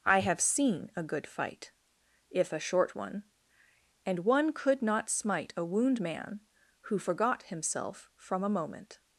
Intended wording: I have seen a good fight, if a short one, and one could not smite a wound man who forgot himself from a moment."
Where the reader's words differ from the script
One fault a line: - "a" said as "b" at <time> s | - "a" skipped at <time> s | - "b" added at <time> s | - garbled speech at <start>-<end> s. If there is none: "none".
none